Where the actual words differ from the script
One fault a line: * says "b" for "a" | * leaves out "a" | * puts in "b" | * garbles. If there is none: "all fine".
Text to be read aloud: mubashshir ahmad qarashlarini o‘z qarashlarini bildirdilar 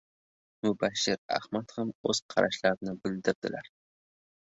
* says "ham" for "qarashlarini"